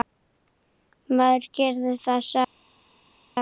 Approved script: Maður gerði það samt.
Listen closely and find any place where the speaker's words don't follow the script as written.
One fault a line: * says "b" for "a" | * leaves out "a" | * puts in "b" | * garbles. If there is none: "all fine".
all fine